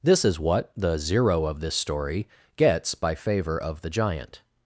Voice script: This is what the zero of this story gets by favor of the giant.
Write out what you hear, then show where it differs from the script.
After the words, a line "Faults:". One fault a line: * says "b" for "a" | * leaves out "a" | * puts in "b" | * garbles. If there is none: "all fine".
This is what the zero of this story gets by favor of the giant.
Faults:
all fine